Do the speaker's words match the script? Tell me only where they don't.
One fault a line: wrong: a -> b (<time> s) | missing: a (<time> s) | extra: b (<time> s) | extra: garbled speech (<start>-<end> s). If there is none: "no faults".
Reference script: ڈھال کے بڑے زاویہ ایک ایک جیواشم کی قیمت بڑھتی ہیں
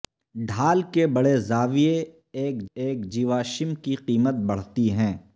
no faults